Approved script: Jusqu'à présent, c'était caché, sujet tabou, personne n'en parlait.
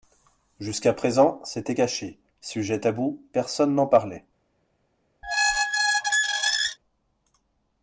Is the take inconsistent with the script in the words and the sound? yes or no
yes